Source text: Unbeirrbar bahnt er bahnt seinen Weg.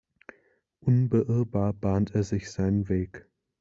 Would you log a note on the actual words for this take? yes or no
yes